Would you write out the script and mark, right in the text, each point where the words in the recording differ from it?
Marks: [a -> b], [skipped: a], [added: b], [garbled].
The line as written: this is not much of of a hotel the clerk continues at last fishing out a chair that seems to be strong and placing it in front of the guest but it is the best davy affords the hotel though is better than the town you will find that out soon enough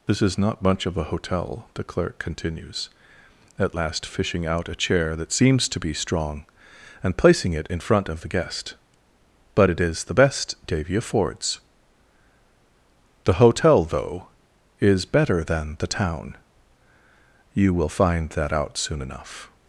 this is not much of [skipped: of] a hotel the clerk continues at last fishing out a chair that seems to be strong and placing it in front of the guest but it is the best davy affords the hotel though is better than the town you will find that out soon enough